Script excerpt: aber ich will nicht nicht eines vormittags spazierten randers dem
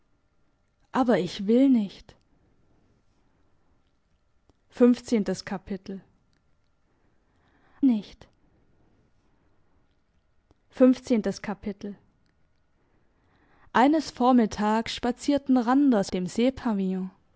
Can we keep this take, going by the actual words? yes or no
yes